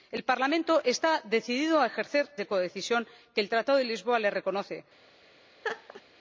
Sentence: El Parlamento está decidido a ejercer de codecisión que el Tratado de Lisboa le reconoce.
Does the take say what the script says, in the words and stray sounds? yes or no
no